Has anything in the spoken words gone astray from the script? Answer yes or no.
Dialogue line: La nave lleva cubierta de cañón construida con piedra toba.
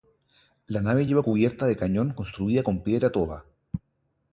no